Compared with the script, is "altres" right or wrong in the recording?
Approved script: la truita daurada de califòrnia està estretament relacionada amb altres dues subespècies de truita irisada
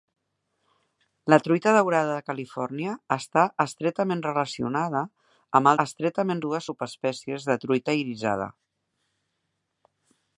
wrong